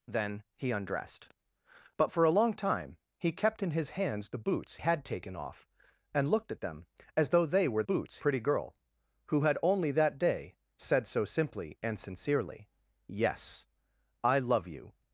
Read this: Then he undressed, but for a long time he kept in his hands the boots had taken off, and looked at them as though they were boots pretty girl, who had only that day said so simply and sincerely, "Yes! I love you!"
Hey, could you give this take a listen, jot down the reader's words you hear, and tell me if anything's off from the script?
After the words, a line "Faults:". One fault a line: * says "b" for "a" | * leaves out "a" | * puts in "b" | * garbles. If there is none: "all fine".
Then he undressed, but for a long time he kept in his hands the boots had taken off, and looked at them as though they were boots pretty girl, who had only that day said so simply and sincerely, "Yes! I love you!"
Faults:
all fine